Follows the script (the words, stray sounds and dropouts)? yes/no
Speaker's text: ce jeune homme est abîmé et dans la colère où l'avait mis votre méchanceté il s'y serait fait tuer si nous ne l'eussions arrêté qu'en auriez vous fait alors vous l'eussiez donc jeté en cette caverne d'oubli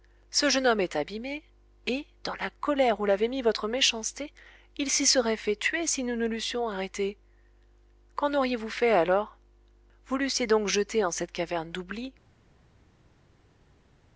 yes